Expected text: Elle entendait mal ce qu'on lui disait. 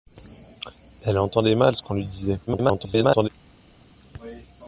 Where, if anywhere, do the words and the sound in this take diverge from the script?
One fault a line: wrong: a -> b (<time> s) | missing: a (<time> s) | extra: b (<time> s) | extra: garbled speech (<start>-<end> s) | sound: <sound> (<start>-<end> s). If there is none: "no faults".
extra: garbled speech (2.5-3.3 s)